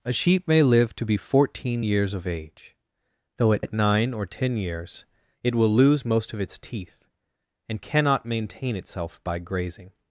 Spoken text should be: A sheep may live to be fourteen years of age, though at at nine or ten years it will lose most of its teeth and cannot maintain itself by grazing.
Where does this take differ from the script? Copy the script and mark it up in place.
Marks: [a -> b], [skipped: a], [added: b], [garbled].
A sheep may live to be fourteen years of age, though at at nine or ten years it will lose most of its teeth and cannot maintain itself by grazing.